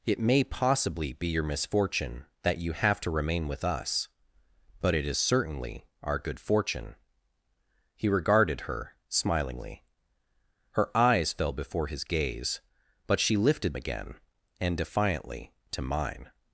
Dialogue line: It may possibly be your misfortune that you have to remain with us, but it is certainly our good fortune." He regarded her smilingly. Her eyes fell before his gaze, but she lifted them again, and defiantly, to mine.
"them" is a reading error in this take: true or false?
true